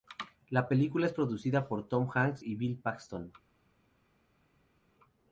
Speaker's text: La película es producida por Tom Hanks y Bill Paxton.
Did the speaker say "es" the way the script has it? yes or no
yes